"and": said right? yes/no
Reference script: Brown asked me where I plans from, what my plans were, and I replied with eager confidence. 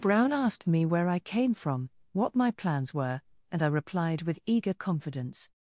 yes